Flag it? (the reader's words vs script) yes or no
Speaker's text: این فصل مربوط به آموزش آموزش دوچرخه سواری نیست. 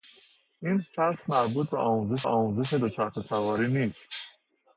no